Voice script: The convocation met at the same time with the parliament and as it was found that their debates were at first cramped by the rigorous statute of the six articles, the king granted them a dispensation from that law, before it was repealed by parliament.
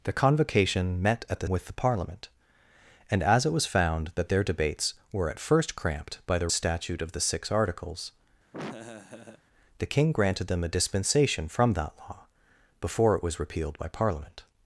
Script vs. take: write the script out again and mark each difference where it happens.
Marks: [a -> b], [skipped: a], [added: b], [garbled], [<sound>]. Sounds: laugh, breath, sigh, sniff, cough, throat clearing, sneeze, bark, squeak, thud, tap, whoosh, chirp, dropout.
The convocation met at the [skipped: same time] with the parliament and as it was found that their debates were at first cramped by the [skipped: rigorous] statute of the six articles, [laugh] the king granted them a dispensation from that law, before it was repealed by parliament.